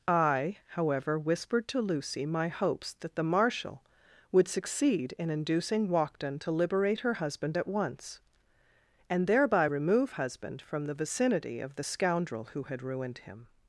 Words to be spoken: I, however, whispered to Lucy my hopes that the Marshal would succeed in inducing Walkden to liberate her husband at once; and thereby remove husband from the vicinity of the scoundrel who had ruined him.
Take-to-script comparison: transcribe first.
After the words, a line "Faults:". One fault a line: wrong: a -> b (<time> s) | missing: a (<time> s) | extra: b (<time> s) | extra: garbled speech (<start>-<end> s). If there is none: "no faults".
I, however, whispered to Lucy my hopes that the Marshal would succeed in inducing Walkden to liberate her husband at once; and thereby remove husband from the vicinity of the scoundrel who had ruined him.
Faults:
no faults